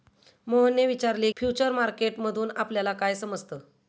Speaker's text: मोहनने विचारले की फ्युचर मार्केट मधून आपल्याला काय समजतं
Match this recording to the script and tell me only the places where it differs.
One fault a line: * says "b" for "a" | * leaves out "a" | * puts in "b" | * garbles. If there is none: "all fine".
* leaves out "की"